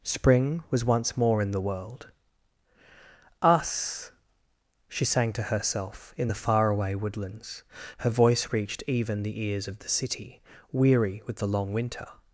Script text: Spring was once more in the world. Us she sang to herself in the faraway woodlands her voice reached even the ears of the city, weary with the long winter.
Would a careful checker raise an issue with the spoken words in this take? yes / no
no